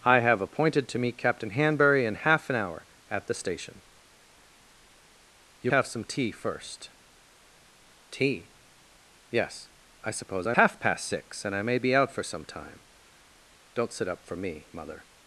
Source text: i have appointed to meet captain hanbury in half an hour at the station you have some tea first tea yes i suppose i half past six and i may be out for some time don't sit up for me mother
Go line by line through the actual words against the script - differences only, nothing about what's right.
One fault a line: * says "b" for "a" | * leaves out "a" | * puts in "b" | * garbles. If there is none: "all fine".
all fine